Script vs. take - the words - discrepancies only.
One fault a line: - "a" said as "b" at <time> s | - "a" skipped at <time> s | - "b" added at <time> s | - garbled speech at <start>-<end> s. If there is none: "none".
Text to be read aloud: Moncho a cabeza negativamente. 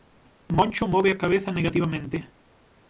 - "move" added at 0.9 s